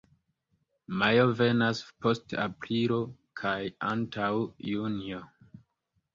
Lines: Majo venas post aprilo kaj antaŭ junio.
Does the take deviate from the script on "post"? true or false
false